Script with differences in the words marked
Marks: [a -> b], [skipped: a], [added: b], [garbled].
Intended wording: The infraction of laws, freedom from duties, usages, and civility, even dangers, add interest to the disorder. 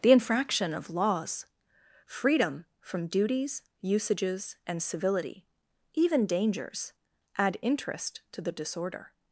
The infraction of laws, freedom from duties, usages, and civility, even dangers, add interest to the disorder.